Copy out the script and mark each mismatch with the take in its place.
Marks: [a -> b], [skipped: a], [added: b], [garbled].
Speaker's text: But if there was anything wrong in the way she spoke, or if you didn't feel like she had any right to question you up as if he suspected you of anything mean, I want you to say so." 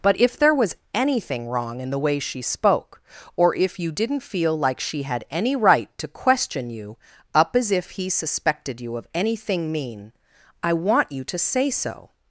But if there was anything wrong in the way she spoke, or if you didn't feel like she had any right to question you up as if he suspected you of anything mean, I want you to say so."